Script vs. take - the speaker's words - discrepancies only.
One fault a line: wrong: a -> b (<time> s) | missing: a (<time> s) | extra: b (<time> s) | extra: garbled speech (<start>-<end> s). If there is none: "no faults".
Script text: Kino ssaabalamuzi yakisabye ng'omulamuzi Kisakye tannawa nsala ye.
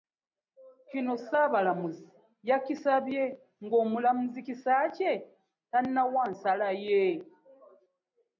no faults